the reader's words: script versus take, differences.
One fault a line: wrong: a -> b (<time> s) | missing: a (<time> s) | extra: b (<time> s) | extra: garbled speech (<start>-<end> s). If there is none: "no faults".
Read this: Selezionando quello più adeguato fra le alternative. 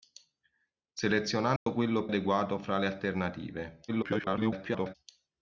missing: più (2.1 s)
extra: garbled speech (3.9-4.9 s)